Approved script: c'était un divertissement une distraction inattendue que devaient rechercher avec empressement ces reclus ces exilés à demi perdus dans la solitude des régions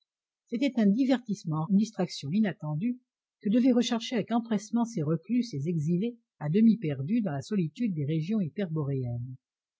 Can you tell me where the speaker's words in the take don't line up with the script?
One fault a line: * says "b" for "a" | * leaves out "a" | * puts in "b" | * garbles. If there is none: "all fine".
all fine